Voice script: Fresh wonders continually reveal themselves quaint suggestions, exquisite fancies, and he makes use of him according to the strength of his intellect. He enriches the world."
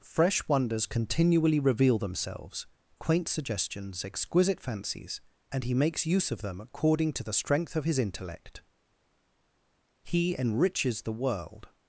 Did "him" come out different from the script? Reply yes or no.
yes